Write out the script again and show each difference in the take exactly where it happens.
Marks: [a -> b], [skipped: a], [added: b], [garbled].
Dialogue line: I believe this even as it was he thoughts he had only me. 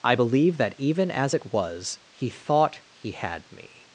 I believe [this -> that] even as it was he [thoughts -> thought] he had [skipped: only] me.